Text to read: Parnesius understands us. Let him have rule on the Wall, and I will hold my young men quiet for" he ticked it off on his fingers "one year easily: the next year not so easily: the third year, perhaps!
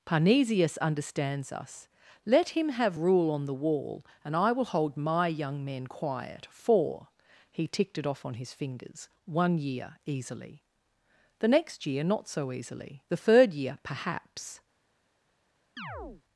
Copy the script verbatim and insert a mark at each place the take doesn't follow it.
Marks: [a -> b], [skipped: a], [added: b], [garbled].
Parnesius understands us. Let him have rule on the Wall, and I will hold my young men quiet for" he ticked it off on his fingers "one year easily: the next year not so easily: the third year, perhaps!